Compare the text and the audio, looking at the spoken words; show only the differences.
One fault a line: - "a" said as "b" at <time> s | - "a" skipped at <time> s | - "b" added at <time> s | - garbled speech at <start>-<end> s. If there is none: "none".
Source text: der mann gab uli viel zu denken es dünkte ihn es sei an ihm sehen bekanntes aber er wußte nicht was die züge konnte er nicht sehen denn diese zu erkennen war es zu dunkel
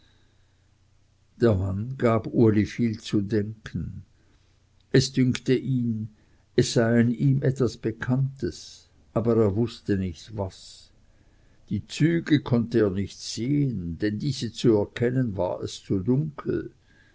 - "sehen" said as "etwas" at 7.4 s